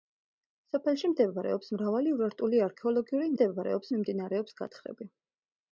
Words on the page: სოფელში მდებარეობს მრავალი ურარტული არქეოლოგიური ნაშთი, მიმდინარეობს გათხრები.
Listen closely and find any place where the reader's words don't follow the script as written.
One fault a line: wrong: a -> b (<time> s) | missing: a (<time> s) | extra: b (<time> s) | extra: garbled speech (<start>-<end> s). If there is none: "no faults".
wrong: ნაშთი -> მდებარეობს (3.3 s)